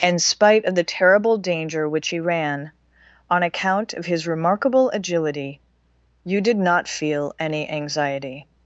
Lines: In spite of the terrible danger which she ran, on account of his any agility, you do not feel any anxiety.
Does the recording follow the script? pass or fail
fail